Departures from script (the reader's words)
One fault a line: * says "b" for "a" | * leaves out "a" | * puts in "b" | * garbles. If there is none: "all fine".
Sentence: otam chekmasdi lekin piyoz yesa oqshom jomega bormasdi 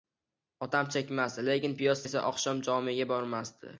all fine